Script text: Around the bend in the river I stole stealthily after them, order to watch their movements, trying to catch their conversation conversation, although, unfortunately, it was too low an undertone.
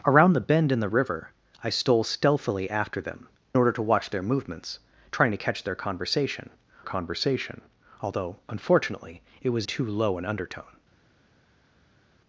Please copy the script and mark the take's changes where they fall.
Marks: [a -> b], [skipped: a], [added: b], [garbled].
Around the bend in the river I stole stealthily after them, order to watch their movements, trying to catch their conversation conversation, although, unfortunately, it was too low an undertone.